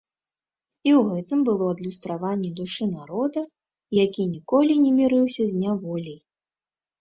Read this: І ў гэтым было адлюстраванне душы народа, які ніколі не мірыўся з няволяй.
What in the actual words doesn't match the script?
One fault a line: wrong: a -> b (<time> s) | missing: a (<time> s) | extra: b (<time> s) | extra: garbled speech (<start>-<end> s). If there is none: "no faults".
no faults